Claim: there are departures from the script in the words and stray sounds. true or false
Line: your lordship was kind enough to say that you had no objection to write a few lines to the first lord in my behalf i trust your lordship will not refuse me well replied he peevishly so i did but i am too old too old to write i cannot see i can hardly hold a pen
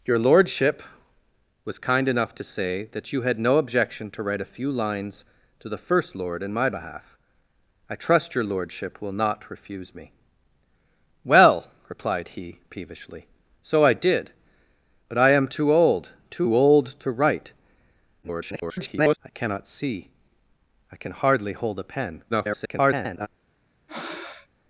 true